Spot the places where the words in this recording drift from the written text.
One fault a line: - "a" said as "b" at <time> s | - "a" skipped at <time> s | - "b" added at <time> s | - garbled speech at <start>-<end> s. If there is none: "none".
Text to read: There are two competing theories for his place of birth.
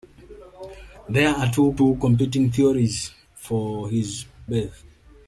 - "two" added at 1.7 s
- "place of" skipped at 4.2 s